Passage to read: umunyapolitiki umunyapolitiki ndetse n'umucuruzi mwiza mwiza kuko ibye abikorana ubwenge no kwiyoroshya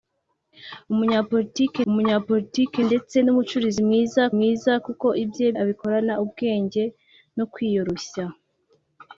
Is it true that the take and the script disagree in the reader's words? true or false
false